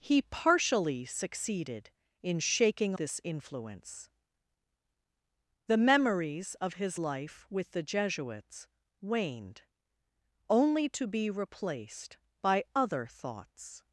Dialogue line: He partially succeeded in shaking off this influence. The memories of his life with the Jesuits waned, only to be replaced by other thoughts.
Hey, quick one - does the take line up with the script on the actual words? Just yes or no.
no